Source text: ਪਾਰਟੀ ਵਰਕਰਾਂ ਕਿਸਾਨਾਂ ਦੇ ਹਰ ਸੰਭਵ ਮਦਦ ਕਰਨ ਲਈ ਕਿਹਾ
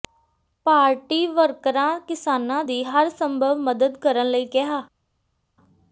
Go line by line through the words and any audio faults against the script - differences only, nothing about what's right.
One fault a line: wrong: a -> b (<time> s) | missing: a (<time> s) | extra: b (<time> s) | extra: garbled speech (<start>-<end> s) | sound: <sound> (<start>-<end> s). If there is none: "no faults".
wrong: ਦੇ -> ਦੀ (2.6 s)